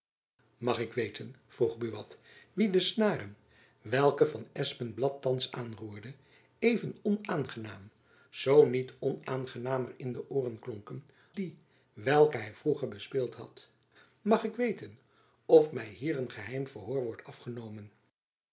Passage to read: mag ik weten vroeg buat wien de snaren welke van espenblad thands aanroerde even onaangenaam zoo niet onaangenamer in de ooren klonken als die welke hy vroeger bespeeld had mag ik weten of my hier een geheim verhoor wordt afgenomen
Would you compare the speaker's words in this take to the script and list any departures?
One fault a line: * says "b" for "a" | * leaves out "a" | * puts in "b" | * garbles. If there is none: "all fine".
* leaves out "als"